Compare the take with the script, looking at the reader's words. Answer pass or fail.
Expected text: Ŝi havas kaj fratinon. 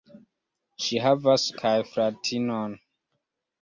pass